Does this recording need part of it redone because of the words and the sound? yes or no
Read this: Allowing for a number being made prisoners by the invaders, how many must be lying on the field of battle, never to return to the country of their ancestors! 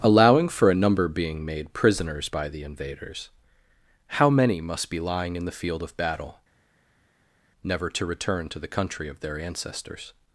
yes